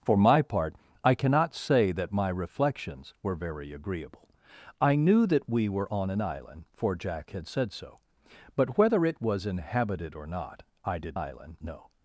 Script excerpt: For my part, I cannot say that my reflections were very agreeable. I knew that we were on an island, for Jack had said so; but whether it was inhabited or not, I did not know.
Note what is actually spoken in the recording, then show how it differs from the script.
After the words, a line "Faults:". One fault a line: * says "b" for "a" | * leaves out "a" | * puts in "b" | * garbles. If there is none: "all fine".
For my part, I cannot say that my reflections were very agreeable. I knew that we were on an island, for Jack had said so; but whether it was inhabited or not, I did island know.
Faults:
* says "island" for "not"